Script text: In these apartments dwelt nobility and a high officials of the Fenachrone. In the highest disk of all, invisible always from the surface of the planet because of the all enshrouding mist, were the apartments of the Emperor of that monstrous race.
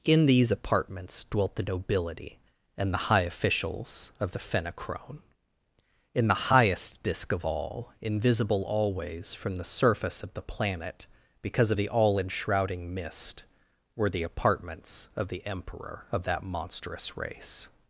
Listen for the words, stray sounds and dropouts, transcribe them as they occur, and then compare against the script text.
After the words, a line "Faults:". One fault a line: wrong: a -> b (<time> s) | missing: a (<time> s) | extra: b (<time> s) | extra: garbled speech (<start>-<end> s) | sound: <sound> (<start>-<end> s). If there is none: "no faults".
In these apartments dwelt the nobility and the high officials of the Fenachrone. In the highest disk of all, invisible always from the surface of the planet because of the all enshrouding mist, were the apartments of the Emperor of that monstrous race.
Faults:
extra: the (1.6 s)
wrong: a -> the (2.9 s)